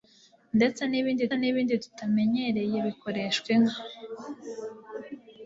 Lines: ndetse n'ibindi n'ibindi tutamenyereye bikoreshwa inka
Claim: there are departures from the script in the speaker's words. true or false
false